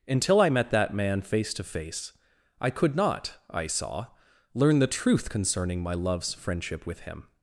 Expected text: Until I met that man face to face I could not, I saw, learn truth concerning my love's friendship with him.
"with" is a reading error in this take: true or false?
false